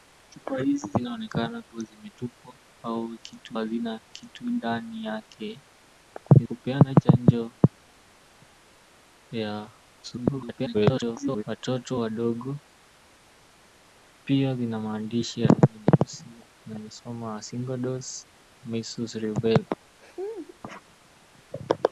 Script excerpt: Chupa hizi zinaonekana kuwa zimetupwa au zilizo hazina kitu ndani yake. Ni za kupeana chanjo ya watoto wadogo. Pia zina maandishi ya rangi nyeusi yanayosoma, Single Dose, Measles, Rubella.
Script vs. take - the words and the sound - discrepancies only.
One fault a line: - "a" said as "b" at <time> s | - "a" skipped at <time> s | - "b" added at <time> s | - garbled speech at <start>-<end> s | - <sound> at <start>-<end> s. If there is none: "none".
- "zilizo" said as "kitu" at 3.2 s
- "za" skipped at 6.4 s
- garbled speech at 10.0-11.4 s
- laugh at 20.0-20.6 s